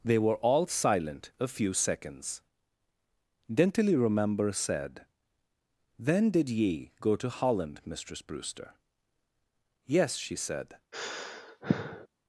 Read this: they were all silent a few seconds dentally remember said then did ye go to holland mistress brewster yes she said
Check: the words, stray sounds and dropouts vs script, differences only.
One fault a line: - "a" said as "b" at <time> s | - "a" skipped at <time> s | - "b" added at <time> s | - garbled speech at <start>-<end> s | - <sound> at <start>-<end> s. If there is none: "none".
- sigh at 10.9-12.1 s